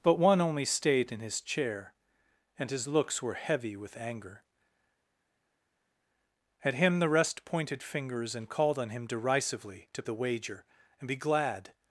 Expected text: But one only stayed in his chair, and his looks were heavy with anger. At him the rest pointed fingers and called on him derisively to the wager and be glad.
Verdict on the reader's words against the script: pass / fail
pass